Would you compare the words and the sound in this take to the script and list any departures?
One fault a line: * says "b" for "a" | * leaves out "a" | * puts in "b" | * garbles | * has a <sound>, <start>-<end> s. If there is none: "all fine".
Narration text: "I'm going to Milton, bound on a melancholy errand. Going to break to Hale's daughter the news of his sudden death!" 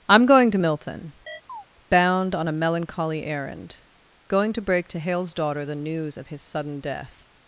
* has a chirp, 1.3-1.7 s